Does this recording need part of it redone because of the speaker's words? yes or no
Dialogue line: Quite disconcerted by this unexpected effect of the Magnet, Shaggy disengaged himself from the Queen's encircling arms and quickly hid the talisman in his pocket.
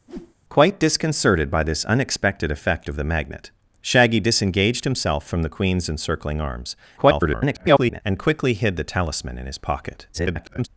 yes